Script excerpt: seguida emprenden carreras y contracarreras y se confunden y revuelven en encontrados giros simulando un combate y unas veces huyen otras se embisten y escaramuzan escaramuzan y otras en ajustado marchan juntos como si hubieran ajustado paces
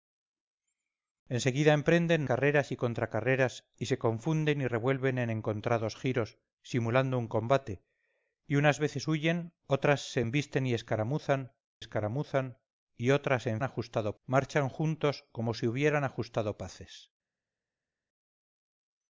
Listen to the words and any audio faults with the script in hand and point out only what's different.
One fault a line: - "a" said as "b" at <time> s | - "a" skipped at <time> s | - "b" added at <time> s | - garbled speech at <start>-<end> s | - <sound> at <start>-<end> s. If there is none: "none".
none